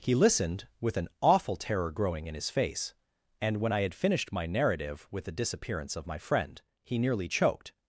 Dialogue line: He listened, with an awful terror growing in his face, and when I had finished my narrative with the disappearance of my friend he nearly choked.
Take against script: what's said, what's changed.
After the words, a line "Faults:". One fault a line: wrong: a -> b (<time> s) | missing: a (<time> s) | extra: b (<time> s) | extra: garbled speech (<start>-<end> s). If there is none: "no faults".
He listened, with an awful terror growing in his face, and when I had finished my narrative with the disappearance of my friend he nearly choked.
Faults:
no faults